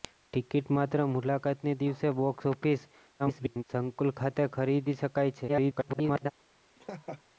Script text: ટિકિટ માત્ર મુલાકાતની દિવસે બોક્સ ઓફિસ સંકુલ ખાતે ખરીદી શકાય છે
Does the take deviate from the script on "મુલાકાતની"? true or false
false